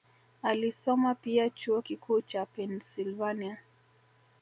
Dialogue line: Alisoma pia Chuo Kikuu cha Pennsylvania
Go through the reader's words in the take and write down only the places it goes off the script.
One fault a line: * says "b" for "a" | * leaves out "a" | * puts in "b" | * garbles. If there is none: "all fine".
all fine